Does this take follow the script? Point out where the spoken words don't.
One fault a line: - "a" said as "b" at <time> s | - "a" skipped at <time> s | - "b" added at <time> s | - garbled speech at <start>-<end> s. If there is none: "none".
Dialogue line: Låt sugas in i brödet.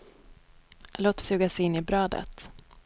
none